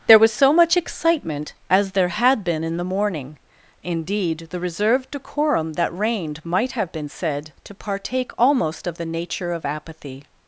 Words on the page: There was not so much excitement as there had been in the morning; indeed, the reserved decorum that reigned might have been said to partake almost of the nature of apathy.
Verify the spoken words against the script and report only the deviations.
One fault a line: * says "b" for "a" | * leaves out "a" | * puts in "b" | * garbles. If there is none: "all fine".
* leaves out "not"